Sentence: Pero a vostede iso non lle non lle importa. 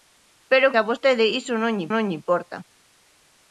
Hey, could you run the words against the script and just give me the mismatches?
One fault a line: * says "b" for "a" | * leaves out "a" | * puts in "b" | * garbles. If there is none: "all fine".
all fine